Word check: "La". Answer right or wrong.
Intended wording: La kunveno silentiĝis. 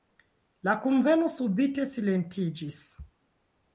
right